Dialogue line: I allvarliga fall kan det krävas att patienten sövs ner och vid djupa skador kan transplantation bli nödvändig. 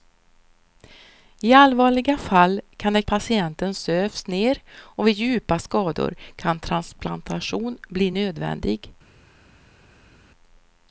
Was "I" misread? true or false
false